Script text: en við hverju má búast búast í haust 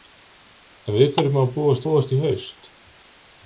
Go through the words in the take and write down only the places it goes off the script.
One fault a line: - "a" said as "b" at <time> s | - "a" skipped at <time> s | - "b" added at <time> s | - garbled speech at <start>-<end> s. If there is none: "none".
none